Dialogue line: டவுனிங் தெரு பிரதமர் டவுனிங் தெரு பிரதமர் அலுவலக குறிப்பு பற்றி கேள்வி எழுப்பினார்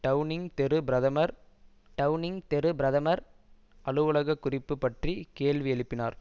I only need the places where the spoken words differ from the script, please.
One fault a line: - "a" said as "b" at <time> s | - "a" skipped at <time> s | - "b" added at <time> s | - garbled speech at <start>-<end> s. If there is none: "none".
none